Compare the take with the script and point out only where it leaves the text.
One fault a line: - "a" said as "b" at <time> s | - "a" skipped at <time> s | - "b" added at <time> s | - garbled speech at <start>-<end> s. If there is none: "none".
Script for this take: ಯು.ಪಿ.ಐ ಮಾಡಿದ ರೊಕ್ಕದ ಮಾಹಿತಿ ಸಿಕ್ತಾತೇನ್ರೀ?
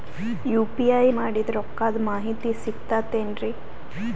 none